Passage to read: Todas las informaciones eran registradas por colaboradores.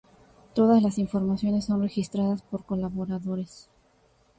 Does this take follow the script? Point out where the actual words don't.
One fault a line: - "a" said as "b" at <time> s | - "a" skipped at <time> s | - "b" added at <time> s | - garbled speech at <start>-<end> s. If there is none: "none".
- "eran" said as "son" at 1.7 s